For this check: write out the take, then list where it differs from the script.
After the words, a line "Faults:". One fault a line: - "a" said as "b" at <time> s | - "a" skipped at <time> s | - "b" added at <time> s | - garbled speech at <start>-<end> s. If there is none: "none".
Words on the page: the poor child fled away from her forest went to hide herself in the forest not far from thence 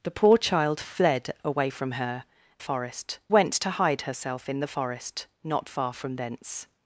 the poor child fled away from her forest went to hide herself in the forest not far from thence
Faults:
none